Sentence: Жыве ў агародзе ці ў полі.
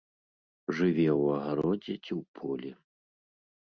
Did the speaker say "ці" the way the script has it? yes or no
yes